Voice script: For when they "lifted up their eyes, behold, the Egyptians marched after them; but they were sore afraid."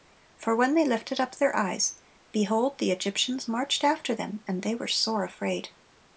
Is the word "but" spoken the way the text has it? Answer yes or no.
no